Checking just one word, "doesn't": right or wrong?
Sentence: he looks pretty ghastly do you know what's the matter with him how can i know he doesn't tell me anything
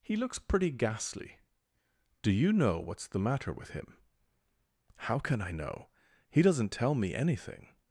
right